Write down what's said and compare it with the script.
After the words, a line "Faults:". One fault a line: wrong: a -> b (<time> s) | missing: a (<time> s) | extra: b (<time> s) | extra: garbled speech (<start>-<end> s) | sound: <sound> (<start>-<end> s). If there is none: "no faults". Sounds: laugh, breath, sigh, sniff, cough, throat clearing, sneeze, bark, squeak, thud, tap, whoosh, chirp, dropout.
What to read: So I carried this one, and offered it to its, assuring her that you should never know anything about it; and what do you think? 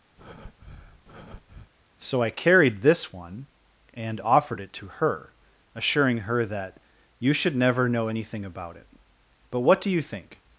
So I carried this one, and offered it to her, assuring her that you should never know anything about it; but what do you think?
Faults:
sound: breath (0.2-1.7 s)
wrong: its -> her (4.9 s)
wrong: and -> but (9.5 s)